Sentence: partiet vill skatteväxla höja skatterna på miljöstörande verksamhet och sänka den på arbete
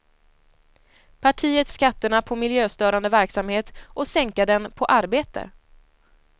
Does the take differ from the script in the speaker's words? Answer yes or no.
yes